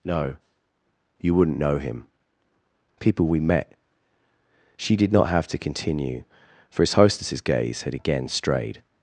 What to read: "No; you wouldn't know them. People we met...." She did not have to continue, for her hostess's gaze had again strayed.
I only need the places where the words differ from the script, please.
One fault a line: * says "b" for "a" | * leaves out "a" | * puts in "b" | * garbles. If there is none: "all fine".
* says "him" for "them"
* says "his" for "her"